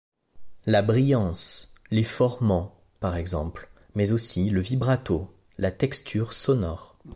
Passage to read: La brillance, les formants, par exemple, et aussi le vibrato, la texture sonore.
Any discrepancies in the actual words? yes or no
yes